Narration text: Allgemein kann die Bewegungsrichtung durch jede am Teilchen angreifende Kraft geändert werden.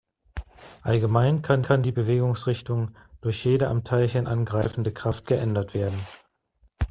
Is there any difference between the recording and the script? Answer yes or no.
yes